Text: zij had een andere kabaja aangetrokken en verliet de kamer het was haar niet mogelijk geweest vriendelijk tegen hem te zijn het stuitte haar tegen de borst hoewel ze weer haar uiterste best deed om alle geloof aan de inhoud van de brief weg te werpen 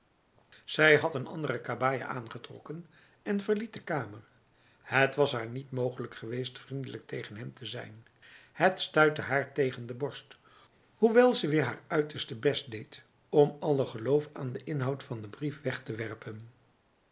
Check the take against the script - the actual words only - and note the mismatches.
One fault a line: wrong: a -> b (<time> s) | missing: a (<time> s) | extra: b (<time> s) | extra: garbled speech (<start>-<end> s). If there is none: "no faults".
no faults